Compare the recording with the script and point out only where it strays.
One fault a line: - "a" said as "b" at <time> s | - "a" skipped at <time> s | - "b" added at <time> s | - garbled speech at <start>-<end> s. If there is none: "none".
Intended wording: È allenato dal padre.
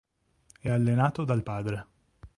none